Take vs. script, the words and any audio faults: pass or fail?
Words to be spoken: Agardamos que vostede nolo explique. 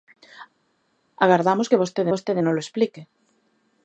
fail